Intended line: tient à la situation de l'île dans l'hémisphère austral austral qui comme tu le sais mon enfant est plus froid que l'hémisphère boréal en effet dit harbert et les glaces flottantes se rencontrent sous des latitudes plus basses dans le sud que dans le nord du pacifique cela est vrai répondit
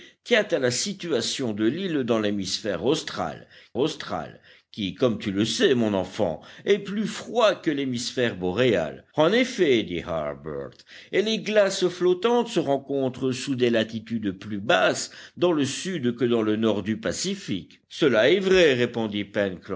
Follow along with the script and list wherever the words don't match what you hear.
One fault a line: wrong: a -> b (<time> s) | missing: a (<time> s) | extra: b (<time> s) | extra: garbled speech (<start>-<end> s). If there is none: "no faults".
no faults